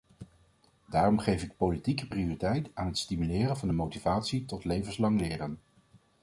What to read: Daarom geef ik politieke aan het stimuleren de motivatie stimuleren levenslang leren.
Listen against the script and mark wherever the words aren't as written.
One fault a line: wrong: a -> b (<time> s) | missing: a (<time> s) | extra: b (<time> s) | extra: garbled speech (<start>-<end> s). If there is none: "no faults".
extra: prioriteit (2.0 s)
extra: van (3.6 s)
wrong: stimuleren -> tot (4.4 s)